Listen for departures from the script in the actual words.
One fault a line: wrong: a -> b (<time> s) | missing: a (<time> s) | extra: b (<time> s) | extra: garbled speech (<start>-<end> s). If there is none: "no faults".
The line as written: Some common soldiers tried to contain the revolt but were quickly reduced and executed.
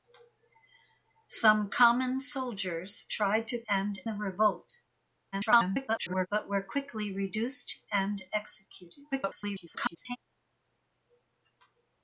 wrong: contain -> and (3.7 s)
extra: garbled speech (5.3-6.3 s)
extra: garbled speech (9.1-10.2 s)